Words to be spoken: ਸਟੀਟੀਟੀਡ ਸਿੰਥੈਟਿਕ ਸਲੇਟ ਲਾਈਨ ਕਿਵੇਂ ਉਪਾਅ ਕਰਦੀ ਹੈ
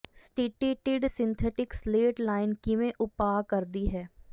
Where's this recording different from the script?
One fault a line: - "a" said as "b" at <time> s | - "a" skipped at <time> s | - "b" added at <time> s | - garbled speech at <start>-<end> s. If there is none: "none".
none